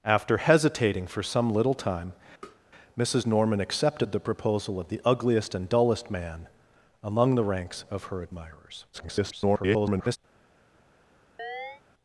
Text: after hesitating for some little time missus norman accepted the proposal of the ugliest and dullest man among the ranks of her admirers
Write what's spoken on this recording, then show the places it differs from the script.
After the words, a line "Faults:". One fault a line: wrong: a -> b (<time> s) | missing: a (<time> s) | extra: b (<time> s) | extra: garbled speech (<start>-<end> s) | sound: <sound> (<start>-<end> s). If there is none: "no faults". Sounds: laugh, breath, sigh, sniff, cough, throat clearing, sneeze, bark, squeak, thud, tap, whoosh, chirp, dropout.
after hesitating for some little time missus norman accepted the proposal of the ugliest and dullest man among the ranks of her admirers [garbled]
Faults:
sound: tap (2.4-2.6 s)
extra: garbled speech (8.9-10.2 s)
sound: chirp (11.4-11.8 s)